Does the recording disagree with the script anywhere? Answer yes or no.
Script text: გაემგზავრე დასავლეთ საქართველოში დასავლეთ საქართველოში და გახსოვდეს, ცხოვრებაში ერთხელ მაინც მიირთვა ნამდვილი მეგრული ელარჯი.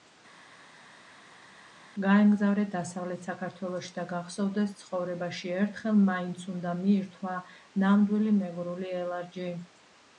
yes